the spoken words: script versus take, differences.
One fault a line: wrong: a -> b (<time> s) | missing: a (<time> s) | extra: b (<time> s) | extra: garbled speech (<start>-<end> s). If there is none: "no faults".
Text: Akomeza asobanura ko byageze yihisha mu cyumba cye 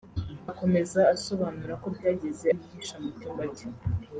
no faults